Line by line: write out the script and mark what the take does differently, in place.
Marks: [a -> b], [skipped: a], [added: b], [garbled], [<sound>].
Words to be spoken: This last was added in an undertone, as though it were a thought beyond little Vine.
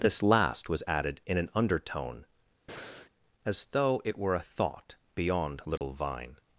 This last was added in an undertone, [breath] as though it were a thought beyond little [dropout] Vine.